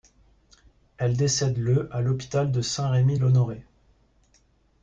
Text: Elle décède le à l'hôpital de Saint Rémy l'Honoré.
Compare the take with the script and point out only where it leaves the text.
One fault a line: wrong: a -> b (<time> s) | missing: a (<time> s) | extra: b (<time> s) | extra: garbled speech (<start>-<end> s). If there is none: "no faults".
no faults